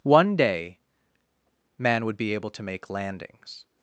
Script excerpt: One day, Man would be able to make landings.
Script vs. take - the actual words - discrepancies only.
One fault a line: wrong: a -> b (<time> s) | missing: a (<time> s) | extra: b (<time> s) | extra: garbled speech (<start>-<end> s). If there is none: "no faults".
no faults